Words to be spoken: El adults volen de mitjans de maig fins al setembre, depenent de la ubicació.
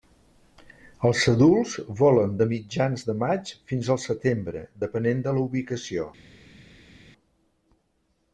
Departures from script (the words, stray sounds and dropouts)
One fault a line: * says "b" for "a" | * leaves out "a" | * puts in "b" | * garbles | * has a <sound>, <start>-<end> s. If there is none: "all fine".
* says "Els" for "El"